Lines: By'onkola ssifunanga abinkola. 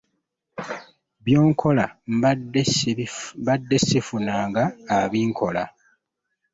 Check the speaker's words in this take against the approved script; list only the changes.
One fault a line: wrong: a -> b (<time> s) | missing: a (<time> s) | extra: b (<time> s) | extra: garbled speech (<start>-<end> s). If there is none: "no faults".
extra: mbadde (3.4 s)